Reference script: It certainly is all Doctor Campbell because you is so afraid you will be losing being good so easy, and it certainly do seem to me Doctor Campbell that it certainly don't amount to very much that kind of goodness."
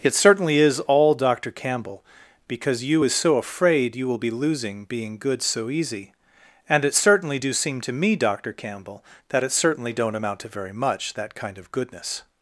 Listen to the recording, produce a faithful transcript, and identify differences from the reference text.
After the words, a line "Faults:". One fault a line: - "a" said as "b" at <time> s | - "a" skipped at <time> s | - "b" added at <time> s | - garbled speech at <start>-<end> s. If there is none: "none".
It certainly is all Doctor Campbell because you is so afraid you will be losing being good so easy, and it certainly do seem to me Doctor Campbell that it certainly don't amount to very much that kind of goodness."
Faults:
none